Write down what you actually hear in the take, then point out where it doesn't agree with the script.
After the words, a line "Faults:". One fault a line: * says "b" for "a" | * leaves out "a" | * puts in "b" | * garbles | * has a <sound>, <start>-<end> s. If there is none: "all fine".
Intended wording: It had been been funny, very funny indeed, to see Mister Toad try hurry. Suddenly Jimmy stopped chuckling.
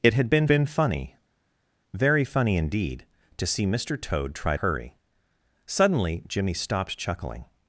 It had been been funny, very funny indeed, to see Mister Toad try hurry. Suddenly Jimmy stopped chuckling.
Faults:
all fine